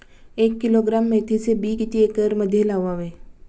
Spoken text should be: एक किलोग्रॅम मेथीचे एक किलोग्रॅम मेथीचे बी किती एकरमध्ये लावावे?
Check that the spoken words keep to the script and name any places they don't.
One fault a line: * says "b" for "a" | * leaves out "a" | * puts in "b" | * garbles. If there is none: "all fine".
* leaves out "एक किलोग्रॅम मेथीचे"